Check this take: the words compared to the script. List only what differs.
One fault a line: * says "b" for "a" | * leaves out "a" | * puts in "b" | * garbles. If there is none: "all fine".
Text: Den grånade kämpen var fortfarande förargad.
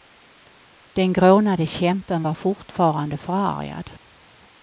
all fine